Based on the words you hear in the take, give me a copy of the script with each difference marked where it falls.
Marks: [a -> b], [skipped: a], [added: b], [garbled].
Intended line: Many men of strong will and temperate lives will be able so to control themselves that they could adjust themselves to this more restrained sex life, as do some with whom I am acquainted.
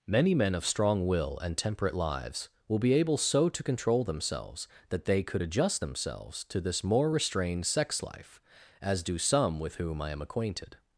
Many men of strong will and temperate lives will be able so to control themselves that they could adjust themselves to this more restrained sex life, as do some with whom I am acquainted.